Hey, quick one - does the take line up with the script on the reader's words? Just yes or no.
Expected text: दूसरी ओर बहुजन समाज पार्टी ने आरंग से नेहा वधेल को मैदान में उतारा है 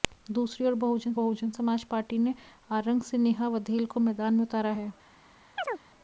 no